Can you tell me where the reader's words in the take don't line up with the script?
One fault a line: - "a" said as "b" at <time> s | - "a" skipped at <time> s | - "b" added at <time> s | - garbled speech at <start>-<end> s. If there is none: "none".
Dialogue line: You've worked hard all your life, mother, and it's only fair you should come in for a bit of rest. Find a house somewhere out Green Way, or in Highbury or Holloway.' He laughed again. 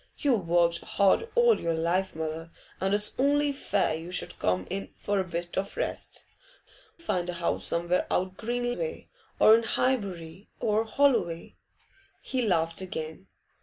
none